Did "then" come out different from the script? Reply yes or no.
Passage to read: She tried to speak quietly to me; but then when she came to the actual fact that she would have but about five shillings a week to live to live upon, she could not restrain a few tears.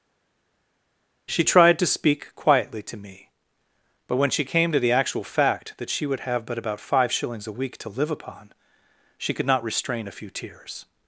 yes